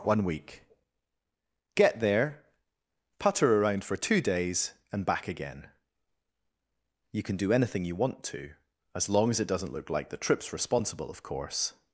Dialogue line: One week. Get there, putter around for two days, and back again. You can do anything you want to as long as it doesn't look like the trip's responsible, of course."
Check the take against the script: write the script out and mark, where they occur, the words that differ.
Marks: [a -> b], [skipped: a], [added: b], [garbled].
One week. Get there, putter around for two days, and back again. You can do anything you want to as long as it doesn't look like the trip's responsible, of course."